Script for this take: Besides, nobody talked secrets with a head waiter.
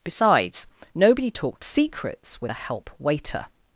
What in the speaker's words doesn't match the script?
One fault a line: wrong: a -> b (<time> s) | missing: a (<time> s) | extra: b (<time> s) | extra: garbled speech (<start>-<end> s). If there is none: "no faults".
wrong: head -> help (2.6 s)